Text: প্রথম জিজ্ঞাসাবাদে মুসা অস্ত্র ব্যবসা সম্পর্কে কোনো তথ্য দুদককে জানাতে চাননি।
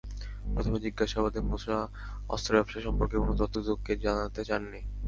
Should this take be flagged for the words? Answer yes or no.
no